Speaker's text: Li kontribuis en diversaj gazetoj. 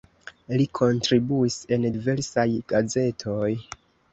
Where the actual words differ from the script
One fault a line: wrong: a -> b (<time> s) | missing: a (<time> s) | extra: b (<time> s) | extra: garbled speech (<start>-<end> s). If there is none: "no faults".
no faults